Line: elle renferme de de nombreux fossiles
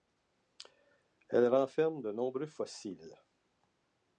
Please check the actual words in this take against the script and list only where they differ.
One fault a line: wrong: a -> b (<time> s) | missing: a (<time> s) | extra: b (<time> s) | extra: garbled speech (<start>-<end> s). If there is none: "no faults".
missing: de (2.1 s)